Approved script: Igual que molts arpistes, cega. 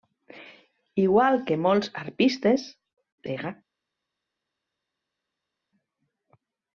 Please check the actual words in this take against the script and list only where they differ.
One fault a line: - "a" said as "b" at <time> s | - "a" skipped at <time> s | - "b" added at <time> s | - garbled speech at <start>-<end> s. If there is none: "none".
none